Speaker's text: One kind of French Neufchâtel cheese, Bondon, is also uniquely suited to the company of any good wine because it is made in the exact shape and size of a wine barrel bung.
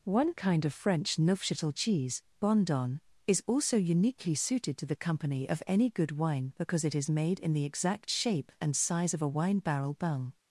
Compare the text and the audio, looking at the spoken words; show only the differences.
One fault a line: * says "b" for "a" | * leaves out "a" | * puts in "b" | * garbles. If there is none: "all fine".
all fine